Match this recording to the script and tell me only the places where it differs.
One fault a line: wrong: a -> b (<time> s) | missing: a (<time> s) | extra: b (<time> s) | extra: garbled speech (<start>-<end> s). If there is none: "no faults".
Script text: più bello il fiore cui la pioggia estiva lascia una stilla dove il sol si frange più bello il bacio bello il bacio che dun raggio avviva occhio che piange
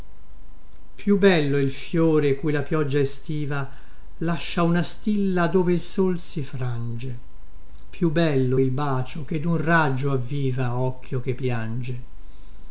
missing: bello il bacio (9.2 s)